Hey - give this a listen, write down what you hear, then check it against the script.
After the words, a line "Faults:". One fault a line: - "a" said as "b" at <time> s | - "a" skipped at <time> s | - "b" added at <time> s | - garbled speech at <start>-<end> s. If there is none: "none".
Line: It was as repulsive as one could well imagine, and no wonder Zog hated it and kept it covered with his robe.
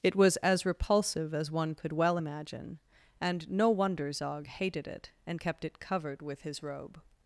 It was as repulsive as one could well imagine, and no wonder Zog hated it and kept it covered with his robe.
Faults:
none